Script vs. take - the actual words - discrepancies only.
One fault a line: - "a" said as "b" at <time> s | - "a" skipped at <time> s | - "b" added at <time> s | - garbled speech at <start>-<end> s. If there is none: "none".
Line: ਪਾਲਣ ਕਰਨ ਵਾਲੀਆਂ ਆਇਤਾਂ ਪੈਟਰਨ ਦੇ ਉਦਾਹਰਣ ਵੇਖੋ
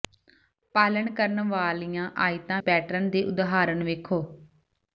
none